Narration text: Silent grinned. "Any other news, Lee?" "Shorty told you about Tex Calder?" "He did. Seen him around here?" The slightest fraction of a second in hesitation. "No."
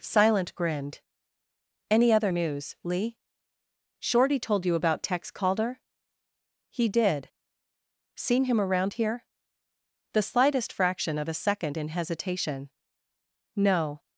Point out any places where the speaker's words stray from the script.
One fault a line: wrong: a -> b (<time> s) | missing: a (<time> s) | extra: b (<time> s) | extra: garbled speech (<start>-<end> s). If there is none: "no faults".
no faults